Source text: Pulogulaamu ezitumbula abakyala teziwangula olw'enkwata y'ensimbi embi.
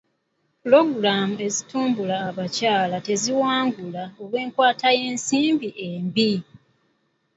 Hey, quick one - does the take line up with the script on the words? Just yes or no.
yes